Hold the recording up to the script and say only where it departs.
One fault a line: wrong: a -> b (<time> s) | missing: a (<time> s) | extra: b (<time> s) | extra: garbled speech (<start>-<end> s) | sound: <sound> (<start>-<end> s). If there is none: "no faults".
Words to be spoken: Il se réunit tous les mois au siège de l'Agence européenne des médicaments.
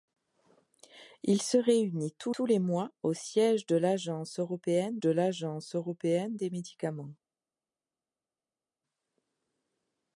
extra: tous (2.3 s)
extra: de l'Agence européenne (5.0 s)